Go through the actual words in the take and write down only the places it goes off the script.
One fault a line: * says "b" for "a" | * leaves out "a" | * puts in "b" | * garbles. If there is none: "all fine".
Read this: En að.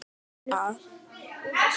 all fine